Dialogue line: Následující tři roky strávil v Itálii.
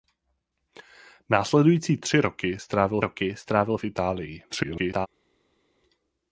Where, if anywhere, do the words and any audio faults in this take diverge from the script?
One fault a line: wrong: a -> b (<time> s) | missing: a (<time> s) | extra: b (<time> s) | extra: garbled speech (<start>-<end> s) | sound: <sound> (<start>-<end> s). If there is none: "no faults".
extra: roky strávil (3.0 s)
extra: garbled speech (4.5-5.1 s)